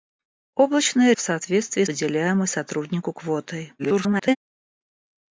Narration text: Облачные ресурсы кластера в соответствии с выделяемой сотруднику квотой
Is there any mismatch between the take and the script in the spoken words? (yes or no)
yes